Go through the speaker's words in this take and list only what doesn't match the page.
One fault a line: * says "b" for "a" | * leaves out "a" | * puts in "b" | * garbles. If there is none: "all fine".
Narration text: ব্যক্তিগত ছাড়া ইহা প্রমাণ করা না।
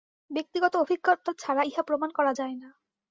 * puts in "অভিজ্ঞতা"
* puts in "যায়"